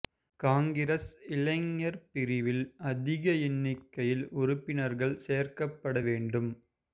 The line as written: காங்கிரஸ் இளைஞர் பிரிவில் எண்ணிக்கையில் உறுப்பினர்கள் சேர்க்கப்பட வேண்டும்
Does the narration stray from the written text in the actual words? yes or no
yes